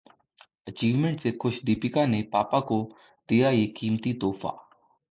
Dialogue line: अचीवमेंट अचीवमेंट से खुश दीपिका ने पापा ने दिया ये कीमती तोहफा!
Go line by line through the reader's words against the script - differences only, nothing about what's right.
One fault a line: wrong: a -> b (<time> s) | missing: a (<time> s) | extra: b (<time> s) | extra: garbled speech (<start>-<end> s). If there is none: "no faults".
missing: अचीवमेंट (1.2 s)
wrong: ने -> को (2.6 s)